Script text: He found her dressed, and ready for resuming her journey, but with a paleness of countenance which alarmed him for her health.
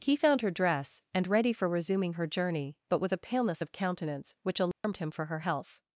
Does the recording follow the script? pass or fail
fail